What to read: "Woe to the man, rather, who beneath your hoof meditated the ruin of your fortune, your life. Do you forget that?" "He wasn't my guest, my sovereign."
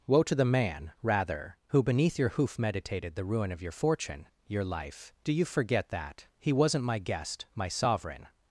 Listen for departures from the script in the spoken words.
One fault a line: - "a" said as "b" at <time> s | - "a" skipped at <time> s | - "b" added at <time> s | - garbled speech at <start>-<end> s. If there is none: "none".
none